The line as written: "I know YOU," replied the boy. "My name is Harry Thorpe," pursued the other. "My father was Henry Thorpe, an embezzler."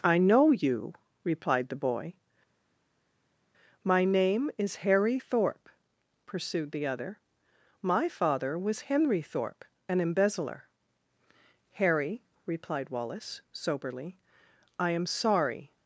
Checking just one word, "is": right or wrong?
right